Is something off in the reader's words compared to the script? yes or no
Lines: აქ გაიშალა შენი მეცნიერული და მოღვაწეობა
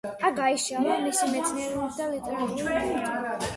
yes